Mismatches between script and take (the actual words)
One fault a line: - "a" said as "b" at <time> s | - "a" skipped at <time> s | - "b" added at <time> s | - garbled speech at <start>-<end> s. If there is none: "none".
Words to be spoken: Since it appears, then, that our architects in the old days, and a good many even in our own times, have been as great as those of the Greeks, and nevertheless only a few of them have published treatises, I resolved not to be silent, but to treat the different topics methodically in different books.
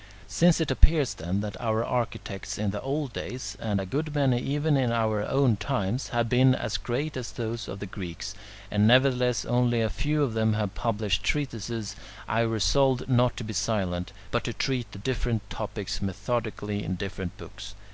none